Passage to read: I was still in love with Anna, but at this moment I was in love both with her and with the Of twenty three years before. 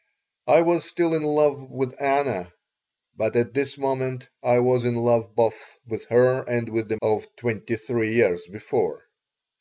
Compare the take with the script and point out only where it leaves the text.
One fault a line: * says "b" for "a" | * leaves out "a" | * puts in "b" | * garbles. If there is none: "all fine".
all fine